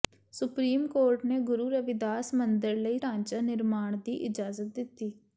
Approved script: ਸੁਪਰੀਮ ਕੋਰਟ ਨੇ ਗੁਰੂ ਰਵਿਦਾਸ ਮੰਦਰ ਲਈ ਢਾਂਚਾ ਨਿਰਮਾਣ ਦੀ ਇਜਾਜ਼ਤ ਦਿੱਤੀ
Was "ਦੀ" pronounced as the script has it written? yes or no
yes